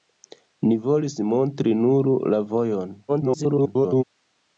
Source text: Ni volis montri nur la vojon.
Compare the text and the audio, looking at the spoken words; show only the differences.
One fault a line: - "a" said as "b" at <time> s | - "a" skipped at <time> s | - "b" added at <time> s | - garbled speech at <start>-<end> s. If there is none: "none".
- garbled speech at 3.1-4.0 s